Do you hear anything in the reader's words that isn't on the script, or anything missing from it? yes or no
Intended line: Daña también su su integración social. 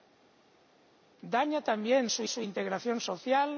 no